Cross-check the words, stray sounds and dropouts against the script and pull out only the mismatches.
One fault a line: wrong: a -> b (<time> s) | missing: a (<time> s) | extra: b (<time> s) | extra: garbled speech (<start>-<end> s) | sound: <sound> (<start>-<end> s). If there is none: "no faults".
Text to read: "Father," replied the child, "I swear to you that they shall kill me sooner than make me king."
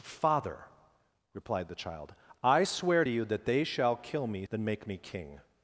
missing: sooner (4.5 s)